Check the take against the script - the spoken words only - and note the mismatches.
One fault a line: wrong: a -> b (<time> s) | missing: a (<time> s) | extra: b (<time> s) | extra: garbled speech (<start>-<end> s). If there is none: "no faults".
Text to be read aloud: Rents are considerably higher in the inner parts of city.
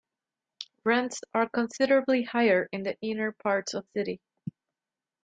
no faults